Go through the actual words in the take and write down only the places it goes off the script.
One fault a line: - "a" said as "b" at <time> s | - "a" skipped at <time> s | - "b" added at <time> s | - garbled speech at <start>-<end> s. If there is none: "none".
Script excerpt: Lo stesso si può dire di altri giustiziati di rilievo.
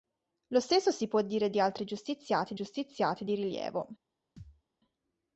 - "giustiziati" added at 2.5 s